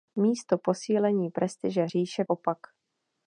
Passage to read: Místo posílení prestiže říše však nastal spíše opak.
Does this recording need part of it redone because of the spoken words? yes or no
yes